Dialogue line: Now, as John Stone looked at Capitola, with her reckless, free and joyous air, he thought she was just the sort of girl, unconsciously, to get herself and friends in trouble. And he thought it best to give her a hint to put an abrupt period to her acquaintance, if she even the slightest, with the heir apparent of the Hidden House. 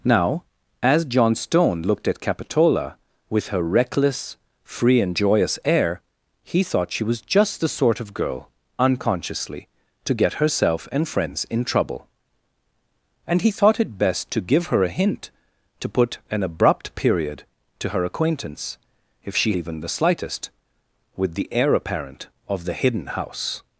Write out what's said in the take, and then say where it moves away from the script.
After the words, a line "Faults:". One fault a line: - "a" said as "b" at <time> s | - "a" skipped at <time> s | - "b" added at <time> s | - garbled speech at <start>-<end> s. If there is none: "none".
Now, as John Stone looked at Capitola, with her reckless, free and joyous air, he thought she was just the sort of girl, unconsciously, to get herself and friends in trouble. And he thought it best to give her a hint to put an abrupt period to her acquaintance, if she even the slightest, with the heir apparent of the Hidden House.
Faults:
none